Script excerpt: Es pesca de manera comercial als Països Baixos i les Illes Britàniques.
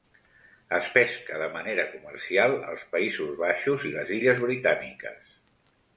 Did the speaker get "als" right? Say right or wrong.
right